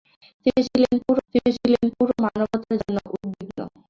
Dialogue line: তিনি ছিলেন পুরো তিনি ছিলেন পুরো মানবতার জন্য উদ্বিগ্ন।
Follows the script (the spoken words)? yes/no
yes